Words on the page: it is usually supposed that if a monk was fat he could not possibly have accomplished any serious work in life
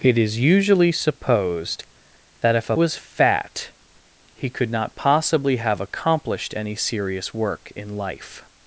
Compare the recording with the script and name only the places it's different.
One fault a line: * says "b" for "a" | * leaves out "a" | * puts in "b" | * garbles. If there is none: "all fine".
* leaves out "monk"